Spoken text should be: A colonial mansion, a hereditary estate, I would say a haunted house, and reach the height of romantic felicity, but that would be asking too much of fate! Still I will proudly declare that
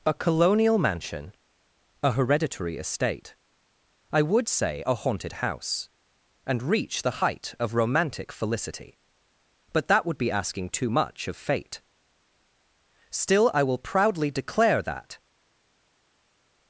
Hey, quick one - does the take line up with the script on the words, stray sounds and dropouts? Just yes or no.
yes